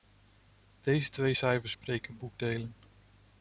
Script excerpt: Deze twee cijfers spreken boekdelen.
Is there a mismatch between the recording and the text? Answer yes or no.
no